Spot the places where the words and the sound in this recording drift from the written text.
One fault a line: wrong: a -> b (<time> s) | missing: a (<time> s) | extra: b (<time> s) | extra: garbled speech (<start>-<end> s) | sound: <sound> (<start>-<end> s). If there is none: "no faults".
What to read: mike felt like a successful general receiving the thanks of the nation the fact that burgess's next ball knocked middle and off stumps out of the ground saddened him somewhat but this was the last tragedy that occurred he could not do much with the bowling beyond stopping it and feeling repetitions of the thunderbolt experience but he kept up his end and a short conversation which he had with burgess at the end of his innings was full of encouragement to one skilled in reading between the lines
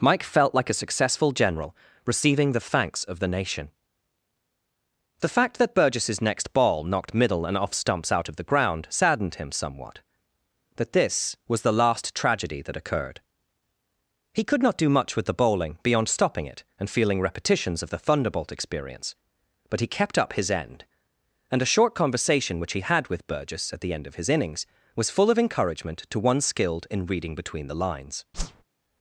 wrong: but -> that (10.8 s)
sound: whoosh (28.3-28.6 s)